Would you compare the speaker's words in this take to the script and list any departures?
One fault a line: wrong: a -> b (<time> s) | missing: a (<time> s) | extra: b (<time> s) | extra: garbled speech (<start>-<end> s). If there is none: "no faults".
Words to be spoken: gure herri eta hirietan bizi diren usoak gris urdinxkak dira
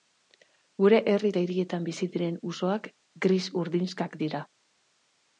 no faults